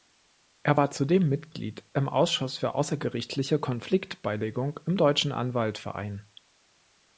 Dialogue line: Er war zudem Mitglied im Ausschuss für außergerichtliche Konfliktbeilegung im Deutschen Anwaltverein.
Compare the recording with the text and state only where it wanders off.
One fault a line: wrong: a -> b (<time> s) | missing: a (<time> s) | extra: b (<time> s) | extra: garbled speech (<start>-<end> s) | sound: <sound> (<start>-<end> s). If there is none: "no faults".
no faults